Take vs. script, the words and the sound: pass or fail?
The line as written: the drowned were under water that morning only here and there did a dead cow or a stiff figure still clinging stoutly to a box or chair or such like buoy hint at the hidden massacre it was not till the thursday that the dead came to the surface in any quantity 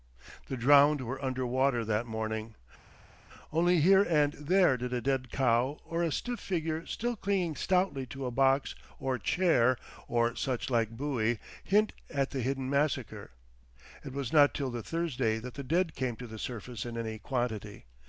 pass